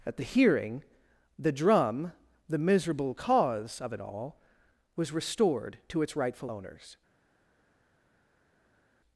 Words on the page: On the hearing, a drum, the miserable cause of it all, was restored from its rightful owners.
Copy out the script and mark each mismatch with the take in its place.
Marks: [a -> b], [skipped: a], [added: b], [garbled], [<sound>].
[On -> At] the hearing, [a -> the] drum, the miserable cause of it all, was restored [from -> to] its rightful owners.